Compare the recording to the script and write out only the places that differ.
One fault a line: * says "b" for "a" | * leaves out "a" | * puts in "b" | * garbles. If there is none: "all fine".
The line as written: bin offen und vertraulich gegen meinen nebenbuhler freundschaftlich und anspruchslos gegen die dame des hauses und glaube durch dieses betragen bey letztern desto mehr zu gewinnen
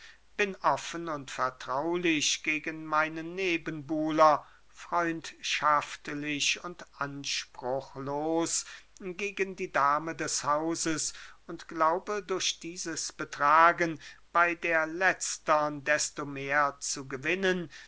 * puts in "der"